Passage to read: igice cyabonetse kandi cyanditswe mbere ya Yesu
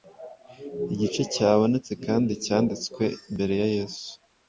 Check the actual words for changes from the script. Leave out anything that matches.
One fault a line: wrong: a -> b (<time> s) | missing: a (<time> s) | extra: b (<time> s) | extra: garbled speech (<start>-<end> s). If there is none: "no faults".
no faults